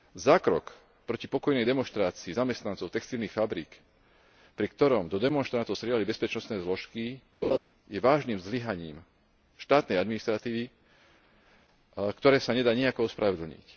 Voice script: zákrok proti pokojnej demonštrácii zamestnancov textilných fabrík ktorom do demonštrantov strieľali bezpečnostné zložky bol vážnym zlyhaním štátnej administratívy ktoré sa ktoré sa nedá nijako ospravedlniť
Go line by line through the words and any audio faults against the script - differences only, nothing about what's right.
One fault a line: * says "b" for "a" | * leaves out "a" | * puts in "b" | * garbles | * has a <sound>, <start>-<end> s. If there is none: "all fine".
* puts in "pri"
* has a laugh, 7.4-7.6 s
* says "je" for "bol"
* leaves out "ktoré sa"